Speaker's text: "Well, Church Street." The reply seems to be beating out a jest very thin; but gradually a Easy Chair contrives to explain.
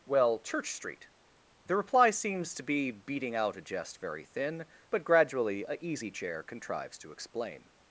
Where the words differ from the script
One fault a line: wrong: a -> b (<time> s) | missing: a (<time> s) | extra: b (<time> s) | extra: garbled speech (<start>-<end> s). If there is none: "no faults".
no faults